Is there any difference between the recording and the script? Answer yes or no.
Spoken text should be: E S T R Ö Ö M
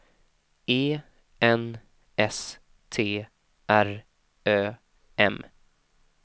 yes